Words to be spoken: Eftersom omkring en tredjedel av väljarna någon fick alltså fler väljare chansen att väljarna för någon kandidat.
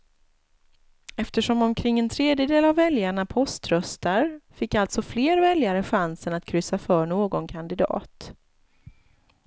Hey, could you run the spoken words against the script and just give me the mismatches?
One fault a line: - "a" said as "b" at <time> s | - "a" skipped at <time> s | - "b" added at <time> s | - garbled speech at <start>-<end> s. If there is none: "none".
- "någon" said as "poströstar" at 3.3 s
- "väljarna" said as "kryssa" at 6.5 s